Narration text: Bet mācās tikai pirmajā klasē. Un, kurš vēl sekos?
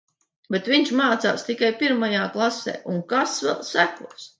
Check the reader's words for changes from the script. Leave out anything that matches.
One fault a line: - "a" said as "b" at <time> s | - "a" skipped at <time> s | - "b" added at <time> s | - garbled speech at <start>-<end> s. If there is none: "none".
- "viņš" added at 0.7 s
- "kurš" said as "kas" at 3.1 s